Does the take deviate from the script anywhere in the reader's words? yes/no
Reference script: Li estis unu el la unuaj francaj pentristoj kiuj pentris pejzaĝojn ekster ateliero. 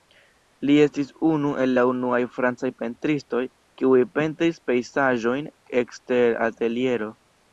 no